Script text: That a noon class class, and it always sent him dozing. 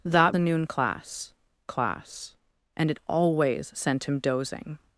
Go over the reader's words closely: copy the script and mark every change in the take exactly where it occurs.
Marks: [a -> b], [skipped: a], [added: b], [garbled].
That a noon class class, and it always sent him dozing.